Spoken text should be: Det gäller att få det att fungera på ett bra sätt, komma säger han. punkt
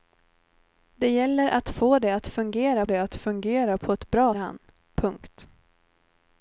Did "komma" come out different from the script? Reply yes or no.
yes